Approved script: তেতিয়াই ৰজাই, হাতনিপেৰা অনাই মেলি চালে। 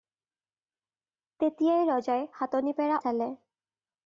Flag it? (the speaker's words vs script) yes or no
yes